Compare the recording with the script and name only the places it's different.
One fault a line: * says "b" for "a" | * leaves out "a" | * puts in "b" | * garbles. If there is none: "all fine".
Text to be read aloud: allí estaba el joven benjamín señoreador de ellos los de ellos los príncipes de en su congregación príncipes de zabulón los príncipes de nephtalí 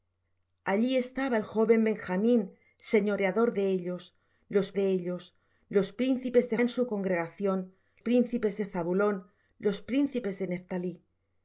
all fine